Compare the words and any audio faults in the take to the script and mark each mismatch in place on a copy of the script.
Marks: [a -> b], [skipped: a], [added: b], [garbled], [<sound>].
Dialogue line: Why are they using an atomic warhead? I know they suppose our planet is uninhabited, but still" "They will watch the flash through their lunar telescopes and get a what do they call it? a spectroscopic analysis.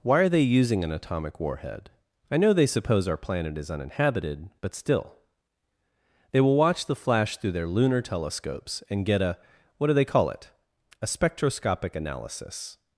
Why are they using an atomic warhead? I know they suppose our planet is uninhabited, but still" "They will watch the flash through their lunar telescopes and get a what do they call it? a spectroscopic analysis.